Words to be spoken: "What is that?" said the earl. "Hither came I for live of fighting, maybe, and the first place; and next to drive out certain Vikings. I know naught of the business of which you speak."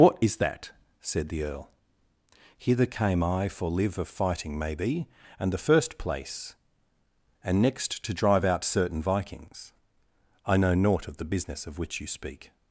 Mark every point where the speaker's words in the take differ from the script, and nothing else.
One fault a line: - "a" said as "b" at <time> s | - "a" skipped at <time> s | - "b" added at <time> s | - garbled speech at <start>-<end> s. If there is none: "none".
none